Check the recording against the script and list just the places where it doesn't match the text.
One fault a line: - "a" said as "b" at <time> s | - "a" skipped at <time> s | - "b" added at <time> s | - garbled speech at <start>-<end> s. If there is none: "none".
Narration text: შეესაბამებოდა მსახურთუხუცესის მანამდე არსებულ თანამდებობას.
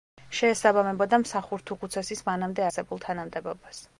none